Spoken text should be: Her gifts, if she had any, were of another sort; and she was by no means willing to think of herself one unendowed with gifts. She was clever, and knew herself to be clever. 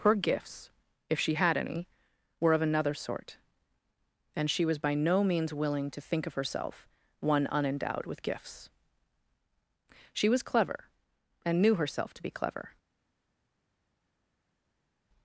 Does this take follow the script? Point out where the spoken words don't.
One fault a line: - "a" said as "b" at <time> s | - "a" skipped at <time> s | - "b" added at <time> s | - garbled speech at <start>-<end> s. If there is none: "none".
none